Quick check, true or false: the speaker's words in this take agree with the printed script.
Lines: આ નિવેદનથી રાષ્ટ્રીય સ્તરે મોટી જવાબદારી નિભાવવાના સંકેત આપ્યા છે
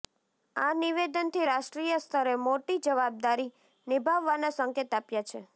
true